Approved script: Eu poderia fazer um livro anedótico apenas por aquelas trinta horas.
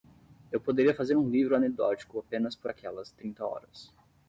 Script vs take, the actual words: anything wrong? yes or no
no